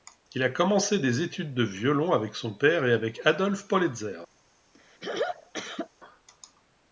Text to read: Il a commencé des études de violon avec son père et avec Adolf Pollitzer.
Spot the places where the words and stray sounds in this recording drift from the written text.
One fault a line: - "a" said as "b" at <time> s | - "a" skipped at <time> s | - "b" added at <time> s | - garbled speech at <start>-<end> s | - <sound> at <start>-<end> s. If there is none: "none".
- throat clearing at 4.7-5.9 s